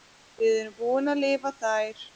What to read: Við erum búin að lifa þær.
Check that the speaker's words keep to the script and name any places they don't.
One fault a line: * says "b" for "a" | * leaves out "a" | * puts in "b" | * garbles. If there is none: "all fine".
all fine